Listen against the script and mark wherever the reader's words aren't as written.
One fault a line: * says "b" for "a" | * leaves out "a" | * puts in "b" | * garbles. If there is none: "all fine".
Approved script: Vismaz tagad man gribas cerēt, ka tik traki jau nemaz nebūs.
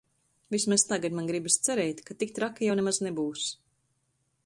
all fine